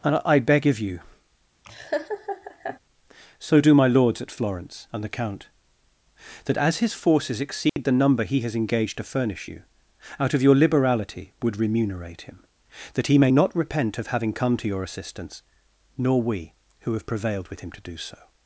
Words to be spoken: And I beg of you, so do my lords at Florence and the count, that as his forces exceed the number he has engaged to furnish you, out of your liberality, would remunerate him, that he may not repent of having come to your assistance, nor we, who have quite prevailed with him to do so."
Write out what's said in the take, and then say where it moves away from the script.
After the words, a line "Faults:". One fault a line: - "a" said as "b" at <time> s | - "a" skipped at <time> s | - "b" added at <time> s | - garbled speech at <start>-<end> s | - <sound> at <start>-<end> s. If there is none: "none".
And I beg of you, so do my lords at Florence and the count, that as his forces exceed the number he has engaged to furnish you, out of your liberality, would remunerate him, that he may not repent of having come to your assistance, nor we, who have prevailed with him to do so."
Faults:
- laugh at 1.6-2.8 s
- dropout at 7.7-7.8 s
- "quite" skipped at 17.1 s